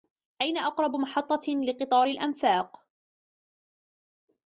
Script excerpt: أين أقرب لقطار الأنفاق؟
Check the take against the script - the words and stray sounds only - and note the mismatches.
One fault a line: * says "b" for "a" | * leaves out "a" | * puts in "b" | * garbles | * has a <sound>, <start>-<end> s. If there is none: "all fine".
* puts in "محطة"